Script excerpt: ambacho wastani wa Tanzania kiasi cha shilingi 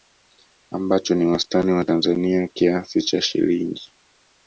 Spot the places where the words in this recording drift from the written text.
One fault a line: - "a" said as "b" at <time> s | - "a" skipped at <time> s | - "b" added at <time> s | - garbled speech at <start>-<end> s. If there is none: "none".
- "ni" added at 1.1 s